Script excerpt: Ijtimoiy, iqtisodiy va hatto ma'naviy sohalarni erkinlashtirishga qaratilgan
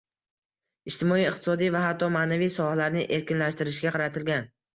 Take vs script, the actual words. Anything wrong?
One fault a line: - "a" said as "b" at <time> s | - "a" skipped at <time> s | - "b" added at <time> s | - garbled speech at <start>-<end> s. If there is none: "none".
none